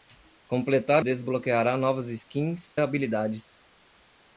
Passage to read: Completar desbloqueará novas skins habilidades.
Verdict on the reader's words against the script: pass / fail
pass